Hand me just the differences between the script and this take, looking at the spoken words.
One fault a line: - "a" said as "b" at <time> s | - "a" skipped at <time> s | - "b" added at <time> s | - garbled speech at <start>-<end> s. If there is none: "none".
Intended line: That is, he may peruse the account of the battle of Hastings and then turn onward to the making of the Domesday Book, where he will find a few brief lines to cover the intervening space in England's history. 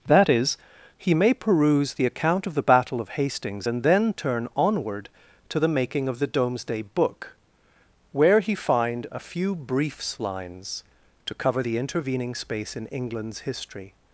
- "will" skipped at 8.5 s
- "brief" said as "briefs" at 9.5 s